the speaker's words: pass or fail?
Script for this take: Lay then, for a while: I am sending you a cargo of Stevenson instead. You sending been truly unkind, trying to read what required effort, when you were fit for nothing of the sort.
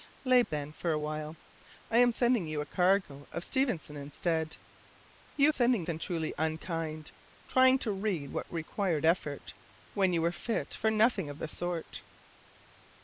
pass